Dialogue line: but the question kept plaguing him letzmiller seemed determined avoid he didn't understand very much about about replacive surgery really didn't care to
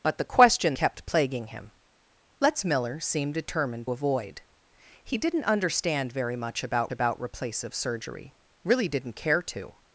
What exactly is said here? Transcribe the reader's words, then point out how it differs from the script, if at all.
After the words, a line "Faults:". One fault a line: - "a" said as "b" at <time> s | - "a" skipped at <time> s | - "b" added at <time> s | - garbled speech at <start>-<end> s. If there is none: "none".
but the question kept plaguing him letzmiller seemed determined avoid he didn't understand very much about about replacive surgery really didn't care to
Faults:
none